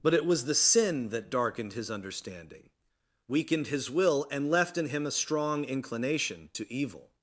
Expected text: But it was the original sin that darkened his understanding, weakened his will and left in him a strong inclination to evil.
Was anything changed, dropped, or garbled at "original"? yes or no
yes